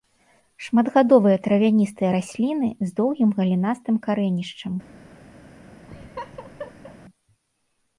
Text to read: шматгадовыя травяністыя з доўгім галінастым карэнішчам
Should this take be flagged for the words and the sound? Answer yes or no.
yes